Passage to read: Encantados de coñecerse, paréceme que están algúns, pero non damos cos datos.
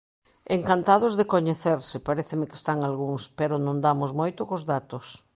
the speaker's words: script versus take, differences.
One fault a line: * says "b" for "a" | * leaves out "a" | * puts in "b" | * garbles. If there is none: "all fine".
* puts in "moito"